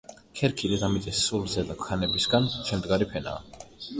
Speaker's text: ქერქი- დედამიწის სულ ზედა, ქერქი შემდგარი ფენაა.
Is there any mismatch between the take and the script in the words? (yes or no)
yes